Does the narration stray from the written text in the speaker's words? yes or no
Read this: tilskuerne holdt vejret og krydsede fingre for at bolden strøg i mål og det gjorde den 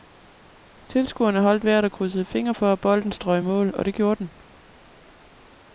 no